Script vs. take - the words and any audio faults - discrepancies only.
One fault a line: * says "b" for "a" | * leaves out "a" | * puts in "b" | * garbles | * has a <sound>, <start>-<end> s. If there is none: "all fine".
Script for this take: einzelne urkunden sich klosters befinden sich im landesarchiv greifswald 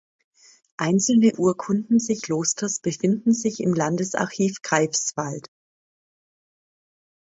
all fine